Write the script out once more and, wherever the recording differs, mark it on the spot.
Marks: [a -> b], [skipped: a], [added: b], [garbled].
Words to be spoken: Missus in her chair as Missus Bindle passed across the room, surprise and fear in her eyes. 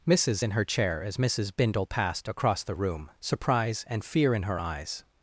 Missus in her chair as Missus Bindle passed across the room, surprise and fear in her eyes.